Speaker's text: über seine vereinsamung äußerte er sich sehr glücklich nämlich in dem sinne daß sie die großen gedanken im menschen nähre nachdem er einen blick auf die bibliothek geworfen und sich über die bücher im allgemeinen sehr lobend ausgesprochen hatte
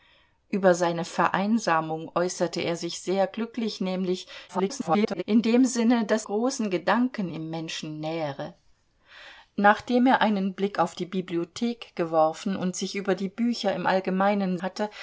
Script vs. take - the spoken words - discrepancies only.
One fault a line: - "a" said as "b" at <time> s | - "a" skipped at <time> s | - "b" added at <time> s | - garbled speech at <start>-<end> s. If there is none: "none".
- garbled speech at 4.5-5.2 s
- "sie die" skipped at 6.3 s
- "sehr lobend ausgesprochen" skipped at 14.6 s